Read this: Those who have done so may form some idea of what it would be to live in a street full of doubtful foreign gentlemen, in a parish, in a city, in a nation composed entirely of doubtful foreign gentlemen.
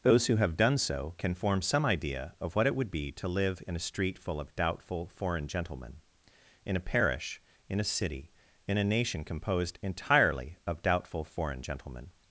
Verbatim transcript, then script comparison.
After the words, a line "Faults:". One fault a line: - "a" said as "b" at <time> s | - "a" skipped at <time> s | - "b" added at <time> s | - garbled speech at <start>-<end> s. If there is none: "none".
Those who have done so can form some idea of what it would be to live in a street full of doubtful foreign gentlemen, in a parish, in a city, in a nation composed entirely of doubtful foreign gentlemen.
Faults:
- "may" said as "can" at 1.2 s